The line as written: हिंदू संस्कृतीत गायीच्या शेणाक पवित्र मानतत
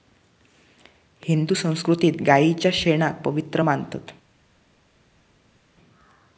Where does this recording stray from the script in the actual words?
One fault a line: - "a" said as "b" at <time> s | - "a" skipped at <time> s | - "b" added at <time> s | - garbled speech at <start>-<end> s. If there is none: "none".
none